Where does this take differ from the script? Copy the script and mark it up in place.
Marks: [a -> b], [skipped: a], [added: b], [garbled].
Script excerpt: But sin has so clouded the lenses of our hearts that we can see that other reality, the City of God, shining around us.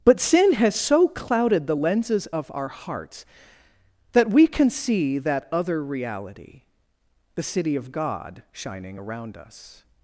But sin has so clouded the lenses of our hearts that we can see that other reality, the City of God, shining around us.